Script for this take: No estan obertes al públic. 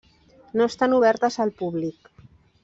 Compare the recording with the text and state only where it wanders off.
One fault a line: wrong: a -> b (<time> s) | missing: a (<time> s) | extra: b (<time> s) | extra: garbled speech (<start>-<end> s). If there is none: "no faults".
no faults